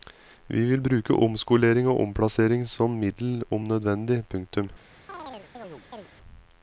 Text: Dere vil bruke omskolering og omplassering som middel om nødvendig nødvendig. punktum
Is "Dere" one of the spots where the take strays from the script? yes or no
yes